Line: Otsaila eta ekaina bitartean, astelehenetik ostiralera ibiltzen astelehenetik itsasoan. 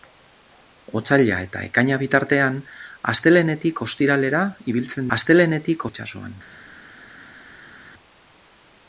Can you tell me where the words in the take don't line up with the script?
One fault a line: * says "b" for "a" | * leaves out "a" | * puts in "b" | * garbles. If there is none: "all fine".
all fine